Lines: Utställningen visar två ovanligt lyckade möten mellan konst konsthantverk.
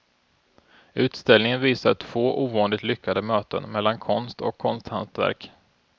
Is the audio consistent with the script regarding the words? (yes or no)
no